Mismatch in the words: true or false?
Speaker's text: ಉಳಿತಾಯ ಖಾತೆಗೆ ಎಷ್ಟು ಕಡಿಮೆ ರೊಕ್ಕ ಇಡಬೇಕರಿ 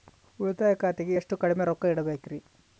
false